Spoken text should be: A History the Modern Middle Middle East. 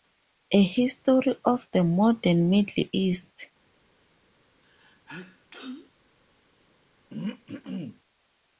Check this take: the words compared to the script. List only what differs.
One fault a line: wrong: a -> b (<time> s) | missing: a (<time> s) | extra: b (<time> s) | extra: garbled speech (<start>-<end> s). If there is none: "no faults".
extra: of (1.4 s)
missing: Middle (2.9 s)